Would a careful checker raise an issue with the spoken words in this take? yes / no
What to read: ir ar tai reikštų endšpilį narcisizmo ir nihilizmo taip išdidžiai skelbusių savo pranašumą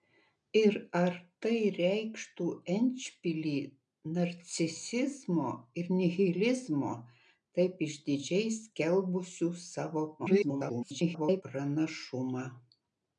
yes